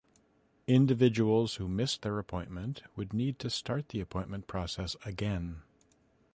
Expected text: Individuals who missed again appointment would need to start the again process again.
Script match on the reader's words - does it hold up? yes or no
no